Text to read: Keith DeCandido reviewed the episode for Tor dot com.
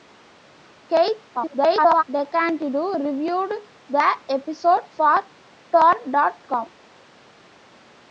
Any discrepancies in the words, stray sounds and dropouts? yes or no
yes